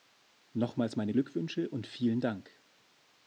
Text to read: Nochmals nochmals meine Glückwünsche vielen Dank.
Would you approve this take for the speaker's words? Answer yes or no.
no